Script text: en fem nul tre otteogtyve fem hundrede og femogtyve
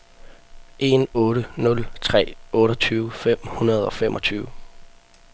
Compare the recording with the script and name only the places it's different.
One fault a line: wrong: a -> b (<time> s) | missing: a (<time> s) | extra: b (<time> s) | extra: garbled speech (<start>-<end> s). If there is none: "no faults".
wrong: fem -> otte (1.2 s)